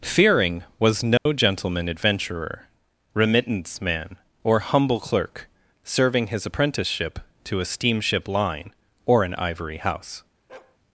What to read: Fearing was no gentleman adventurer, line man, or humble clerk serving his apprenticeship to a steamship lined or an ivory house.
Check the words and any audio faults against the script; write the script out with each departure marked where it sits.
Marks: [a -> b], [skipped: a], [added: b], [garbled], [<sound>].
Fearing was no [dropout] gentleman adventurer, [line -> remittance] man, or humble clerk serving his apprenticeship to a steamship [lined -> line] or an ivory house. [bark]